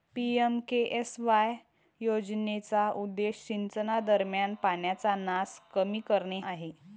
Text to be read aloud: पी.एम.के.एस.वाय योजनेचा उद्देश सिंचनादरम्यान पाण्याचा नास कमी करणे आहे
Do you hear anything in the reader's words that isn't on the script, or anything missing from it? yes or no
no